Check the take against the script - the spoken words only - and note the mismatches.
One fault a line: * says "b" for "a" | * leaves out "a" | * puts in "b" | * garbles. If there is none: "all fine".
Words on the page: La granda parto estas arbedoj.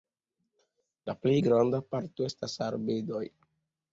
* puts in "plej"